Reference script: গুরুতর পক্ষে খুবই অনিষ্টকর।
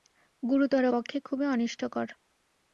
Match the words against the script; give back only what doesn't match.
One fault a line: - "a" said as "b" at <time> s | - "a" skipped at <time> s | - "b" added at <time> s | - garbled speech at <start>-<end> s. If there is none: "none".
none